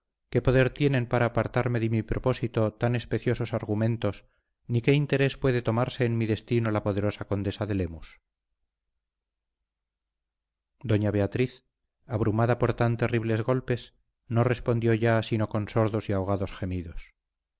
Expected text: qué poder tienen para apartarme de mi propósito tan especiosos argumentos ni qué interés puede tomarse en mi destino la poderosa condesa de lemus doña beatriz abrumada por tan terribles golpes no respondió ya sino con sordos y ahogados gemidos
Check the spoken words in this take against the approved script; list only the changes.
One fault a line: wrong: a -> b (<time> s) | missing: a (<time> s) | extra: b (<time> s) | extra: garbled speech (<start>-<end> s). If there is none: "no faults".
no faults